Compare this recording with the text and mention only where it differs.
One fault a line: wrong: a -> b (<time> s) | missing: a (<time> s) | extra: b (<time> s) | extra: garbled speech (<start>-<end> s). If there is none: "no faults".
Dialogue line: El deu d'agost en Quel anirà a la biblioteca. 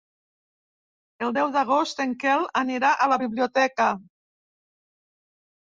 no faults